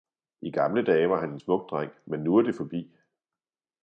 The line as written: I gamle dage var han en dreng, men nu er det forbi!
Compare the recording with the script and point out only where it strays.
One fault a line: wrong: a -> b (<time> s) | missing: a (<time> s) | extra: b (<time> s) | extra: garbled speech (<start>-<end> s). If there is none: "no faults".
extra: smuk (1.4 s)